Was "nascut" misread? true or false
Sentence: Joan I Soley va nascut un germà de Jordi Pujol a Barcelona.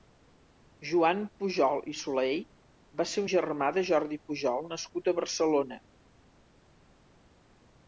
true